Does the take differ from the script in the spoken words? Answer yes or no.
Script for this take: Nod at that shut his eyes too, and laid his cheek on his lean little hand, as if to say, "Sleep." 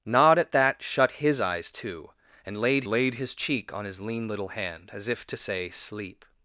yes